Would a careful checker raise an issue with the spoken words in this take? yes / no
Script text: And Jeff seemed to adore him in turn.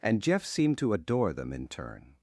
yes